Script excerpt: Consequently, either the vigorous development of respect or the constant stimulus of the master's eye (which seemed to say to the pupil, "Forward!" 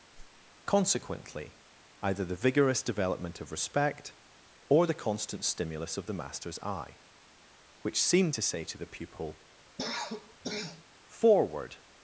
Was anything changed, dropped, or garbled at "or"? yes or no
no